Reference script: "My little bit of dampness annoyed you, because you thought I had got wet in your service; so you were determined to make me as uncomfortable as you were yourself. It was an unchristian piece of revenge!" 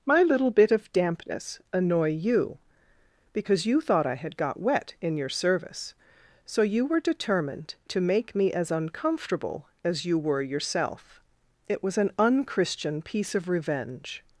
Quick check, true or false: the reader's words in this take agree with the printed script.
false